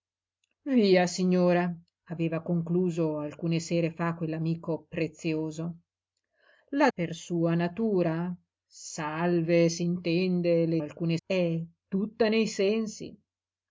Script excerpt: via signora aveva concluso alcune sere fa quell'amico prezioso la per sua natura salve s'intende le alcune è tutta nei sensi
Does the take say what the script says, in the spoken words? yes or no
yes